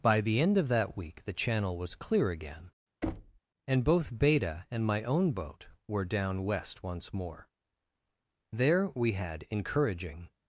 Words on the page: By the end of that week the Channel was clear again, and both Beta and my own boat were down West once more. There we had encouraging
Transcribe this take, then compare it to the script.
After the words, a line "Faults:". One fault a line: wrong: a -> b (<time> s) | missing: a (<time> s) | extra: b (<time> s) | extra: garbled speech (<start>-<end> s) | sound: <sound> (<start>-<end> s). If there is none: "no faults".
By the end of that week the Channel was clear again, and both Beta and my own boat were down West once more. There we had encouraging
Faults:
sound: thud (3.0-3.4 s)